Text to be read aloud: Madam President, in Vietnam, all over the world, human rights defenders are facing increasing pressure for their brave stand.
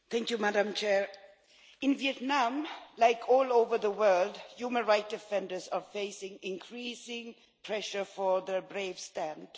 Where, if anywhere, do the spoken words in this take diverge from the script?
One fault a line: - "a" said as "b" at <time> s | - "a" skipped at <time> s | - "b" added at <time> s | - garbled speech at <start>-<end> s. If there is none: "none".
- "like" added at 3.0 s